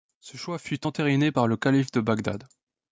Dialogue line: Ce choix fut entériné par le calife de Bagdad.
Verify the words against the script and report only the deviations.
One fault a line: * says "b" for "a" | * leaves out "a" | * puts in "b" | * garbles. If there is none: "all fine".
all fine